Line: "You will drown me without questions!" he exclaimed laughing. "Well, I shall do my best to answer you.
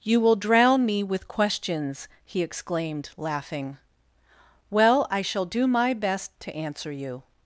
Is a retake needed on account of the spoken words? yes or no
yes